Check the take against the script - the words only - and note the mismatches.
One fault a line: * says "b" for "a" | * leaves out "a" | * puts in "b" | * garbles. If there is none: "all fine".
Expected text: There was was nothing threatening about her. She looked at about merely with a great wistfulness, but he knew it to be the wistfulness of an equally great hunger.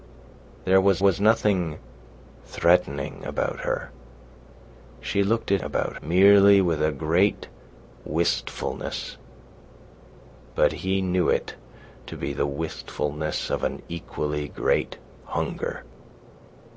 all fine